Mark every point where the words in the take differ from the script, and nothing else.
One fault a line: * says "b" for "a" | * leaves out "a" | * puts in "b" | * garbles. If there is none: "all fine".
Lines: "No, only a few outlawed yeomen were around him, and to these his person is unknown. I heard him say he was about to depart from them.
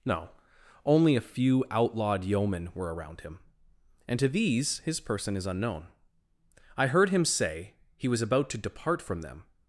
all fine